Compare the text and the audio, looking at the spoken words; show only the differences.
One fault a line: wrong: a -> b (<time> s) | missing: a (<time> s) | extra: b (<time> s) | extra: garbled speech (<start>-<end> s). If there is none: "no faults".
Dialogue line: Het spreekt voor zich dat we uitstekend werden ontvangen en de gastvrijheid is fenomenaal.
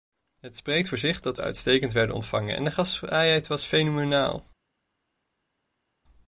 wrong: is -> was (3.5 s)